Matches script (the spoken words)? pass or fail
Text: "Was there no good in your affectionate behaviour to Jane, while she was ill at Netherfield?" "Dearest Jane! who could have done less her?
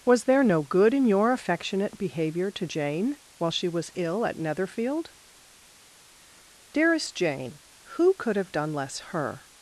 pass